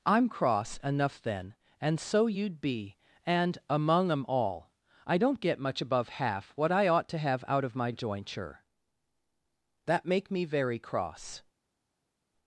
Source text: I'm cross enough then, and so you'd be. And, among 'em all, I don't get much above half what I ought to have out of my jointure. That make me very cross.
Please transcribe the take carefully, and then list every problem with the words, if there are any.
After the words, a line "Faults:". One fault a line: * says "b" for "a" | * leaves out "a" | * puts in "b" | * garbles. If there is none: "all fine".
I'm cross enough then, and so you'd be. And, among 'em all, I don't get much above half what I ought to have out of my jointure. That make me very cross.
Faults:
all fine